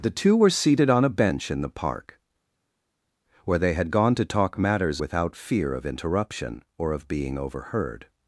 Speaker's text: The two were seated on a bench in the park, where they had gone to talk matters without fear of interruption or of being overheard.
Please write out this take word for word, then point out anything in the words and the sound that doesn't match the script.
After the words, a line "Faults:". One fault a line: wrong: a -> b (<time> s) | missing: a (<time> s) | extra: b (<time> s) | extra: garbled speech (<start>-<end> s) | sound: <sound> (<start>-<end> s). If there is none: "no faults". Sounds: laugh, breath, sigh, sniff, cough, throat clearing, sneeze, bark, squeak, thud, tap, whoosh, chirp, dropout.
The two were seated on a bench in the park, where they had gone to talk matters without fear of interruption or of being overheard.
Faults:
no faults